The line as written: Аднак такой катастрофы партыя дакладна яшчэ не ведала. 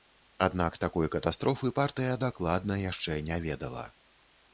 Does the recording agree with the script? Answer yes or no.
yes